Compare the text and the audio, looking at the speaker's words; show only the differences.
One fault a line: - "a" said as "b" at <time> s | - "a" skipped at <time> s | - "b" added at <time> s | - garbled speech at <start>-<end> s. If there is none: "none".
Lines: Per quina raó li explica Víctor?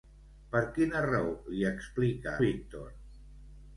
none